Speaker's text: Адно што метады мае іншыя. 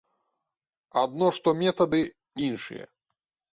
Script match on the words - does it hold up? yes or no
no